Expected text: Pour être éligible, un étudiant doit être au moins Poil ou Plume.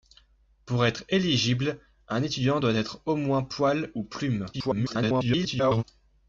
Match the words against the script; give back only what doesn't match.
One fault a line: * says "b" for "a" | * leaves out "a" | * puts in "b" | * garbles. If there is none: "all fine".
* garbles